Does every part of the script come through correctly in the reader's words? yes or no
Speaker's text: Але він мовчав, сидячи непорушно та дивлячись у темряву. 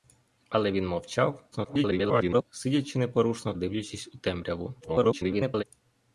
no